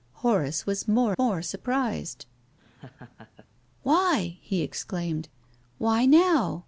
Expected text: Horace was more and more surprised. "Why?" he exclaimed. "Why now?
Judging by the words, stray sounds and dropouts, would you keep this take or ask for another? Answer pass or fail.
fail